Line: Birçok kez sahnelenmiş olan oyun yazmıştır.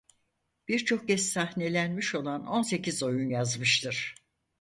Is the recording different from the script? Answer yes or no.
yes